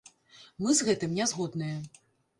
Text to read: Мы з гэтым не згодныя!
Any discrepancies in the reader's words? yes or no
no